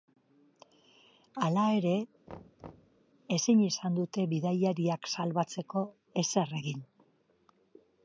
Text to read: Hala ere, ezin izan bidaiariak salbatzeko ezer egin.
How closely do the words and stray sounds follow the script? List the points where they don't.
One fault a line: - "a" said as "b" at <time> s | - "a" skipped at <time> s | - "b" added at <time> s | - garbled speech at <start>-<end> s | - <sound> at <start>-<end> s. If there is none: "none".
- thud at 2.3-3.0 s
- "dute" added at 4.0 s